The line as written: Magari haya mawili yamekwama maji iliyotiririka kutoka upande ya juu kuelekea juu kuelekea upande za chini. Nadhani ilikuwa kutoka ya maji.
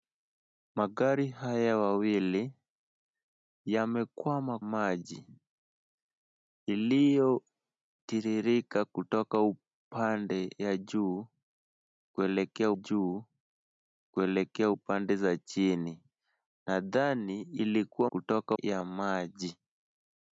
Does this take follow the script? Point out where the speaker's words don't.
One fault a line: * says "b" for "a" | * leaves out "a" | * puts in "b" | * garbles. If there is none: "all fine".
all fine